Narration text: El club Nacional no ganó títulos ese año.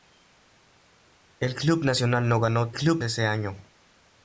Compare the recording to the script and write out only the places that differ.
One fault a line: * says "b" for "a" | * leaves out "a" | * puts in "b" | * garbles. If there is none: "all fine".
* says "club" for "títulos"